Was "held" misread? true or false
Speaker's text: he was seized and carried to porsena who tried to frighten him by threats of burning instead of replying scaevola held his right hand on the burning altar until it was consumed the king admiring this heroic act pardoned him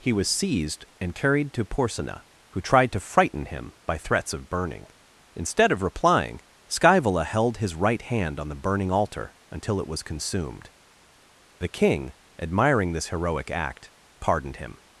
false